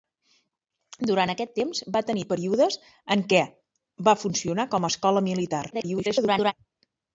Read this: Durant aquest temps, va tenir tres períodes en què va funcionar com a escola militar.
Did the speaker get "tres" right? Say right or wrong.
wrong